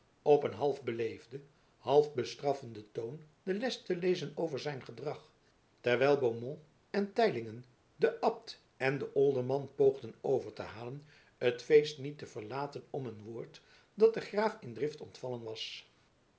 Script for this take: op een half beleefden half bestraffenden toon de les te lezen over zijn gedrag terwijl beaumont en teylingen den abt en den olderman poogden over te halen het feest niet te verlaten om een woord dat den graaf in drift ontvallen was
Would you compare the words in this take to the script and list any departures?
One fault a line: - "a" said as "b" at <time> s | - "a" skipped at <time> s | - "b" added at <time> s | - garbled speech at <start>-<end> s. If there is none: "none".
none